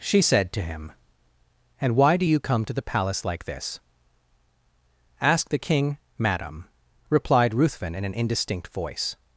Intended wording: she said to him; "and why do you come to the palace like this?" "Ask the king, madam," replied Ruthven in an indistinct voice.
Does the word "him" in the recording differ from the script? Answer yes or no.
no